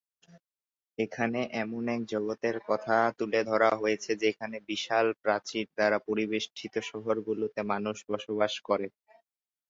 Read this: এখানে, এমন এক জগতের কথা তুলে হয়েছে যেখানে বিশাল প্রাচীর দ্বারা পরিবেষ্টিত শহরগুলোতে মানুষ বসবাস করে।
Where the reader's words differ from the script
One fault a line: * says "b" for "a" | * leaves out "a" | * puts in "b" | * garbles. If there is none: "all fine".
* puts in "ধরা"